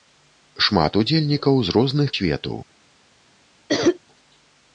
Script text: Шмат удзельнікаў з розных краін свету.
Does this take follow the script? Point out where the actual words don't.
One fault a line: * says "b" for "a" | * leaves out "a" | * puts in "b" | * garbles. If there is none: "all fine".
* leaves out "краін"